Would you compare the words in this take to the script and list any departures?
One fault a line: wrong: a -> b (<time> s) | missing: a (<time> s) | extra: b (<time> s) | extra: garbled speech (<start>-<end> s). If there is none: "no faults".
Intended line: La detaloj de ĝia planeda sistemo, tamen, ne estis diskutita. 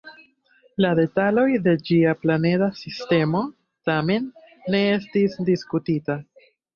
no faults